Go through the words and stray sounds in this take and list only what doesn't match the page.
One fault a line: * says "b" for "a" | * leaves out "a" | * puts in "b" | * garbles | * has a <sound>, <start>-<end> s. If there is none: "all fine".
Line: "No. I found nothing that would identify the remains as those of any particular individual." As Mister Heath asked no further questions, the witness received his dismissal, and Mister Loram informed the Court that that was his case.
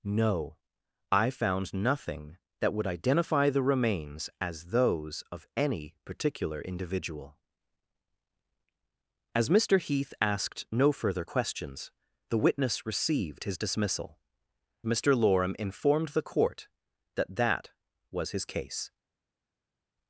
* leaves out "and"